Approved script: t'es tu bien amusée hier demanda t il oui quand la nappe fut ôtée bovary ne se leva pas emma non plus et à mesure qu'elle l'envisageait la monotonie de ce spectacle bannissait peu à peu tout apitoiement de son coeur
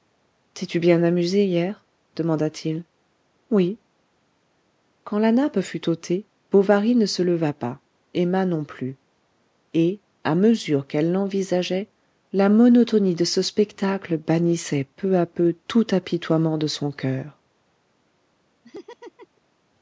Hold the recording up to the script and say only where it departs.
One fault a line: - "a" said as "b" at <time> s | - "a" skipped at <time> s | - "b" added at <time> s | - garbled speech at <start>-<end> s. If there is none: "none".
none